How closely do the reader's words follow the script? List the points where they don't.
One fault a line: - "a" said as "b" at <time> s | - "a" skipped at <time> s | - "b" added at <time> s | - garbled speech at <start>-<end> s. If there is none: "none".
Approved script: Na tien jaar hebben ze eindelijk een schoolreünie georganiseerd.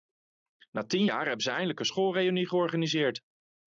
none